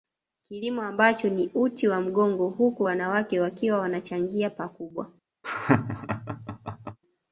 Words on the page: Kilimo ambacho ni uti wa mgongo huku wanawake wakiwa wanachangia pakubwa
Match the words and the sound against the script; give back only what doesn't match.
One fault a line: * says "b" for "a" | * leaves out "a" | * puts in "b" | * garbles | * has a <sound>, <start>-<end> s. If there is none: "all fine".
* has a laugh, 5.4-7.0 s